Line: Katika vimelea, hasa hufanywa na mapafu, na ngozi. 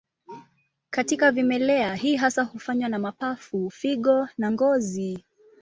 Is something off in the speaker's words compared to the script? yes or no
yes